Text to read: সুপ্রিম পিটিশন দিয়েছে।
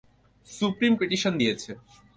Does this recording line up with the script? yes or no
yes